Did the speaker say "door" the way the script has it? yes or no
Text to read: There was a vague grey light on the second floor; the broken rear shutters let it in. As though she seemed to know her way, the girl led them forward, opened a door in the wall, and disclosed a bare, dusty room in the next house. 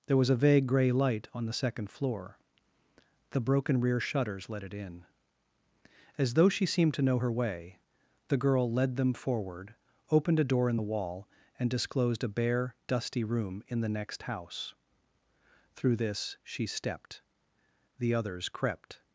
yes